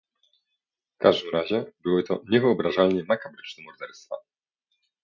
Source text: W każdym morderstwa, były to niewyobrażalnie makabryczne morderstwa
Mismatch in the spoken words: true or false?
true